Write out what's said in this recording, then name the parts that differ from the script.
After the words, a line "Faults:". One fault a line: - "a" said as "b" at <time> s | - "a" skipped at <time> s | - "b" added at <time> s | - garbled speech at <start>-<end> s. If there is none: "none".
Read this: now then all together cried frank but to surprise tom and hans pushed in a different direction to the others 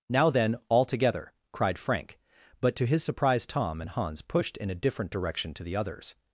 now then all together cried frank but to his surprise tom and hans pushed in a different direction to the others
Faults:
- "his" added at 2.9 s